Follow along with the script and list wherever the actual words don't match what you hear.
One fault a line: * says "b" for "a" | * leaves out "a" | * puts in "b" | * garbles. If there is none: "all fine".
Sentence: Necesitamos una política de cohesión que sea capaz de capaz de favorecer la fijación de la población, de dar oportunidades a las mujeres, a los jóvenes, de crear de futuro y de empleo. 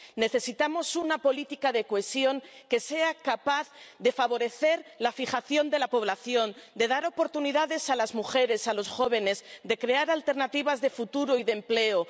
* leaves out "capaz de"
* puts in "alternativas"